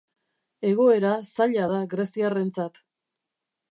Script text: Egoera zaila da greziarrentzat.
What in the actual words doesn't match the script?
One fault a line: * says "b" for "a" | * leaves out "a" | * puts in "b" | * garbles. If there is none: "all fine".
all fine